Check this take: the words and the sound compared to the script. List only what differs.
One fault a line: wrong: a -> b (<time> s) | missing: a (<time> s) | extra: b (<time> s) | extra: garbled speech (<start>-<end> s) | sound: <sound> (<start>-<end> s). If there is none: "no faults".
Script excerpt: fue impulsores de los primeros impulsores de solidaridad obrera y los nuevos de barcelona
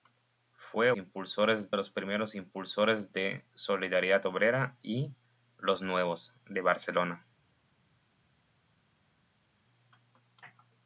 no faults